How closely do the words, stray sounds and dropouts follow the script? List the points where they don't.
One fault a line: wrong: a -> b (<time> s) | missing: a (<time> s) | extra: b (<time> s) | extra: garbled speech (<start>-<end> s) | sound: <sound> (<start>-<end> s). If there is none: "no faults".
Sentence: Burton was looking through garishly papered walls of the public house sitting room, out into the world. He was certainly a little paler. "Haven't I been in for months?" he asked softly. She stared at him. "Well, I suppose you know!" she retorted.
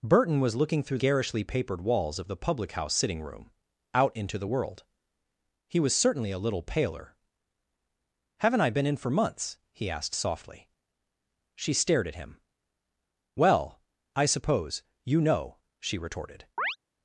sound: chirp (16.6-16.8 s)